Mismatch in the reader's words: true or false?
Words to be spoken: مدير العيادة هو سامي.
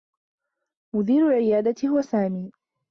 false